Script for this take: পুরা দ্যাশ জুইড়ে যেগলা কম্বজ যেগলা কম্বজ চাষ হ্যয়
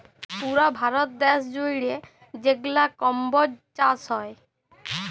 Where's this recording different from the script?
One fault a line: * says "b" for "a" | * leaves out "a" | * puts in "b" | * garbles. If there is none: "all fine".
* puts in "ভারত"
* leaves out "যেগলা কম্বজ"